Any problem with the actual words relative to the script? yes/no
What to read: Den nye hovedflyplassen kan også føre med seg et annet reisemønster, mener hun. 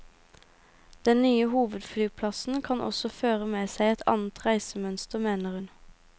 no